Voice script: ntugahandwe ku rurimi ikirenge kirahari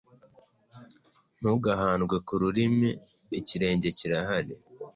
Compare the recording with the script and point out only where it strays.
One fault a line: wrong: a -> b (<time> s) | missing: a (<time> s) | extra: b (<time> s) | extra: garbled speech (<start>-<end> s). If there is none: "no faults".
no faults